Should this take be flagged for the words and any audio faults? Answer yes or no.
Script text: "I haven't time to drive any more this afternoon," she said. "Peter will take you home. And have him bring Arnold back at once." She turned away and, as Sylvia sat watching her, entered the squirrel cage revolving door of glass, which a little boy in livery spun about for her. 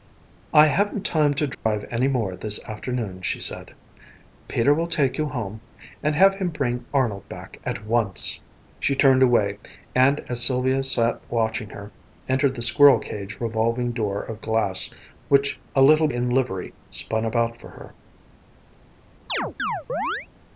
yes